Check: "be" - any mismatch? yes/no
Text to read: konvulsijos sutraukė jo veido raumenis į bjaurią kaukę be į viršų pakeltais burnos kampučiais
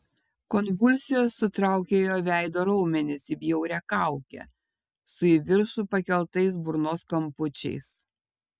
yes